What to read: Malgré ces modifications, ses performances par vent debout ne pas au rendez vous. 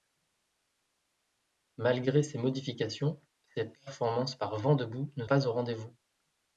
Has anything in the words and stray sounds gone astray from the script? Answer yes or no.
no